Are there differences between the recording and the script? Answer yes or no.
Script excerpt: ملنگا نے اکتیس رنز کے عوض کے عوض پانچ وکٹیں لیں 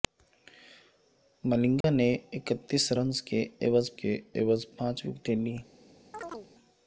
no